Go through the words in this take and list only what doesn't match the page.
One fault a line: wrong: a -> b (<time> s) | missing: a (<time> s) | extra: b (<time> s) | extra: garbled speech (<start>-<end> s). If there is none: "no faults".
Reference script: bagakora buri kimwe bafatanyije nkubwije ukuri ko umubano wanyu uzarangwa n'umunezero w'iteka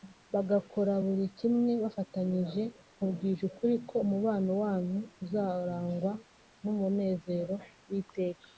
no faults